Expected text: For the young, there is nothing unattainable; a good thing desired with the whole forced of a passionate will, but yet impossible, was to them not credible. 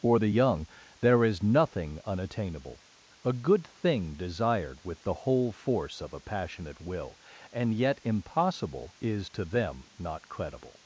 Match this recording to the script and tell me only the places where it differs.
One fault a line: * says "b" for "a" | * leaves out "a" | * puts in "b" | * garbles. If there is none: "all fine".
* says "force" for "forced"
* says "and" for "but"
* says "is" for "was"